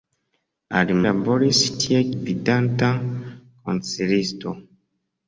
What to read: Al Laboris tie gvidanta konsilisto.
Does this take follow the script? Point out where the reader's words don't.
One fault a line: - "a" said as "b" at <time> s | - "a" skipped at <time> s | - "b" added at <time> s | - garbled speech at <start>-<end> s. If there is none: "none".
none